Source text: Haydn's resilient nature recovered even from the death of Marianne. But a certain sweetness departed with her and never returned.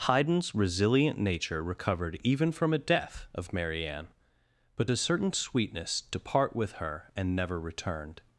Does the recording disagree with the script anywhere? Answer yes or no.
yes